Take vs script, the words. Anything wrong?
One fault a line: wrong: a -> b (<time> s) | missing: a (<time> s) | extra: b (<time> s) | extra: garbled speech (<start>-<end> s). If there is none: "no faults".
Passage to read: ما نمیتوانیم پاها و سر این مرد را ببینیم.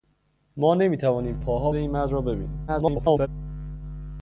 missing: و سر (1.7 s)
extra: garbled speech (2.7-3.3 s)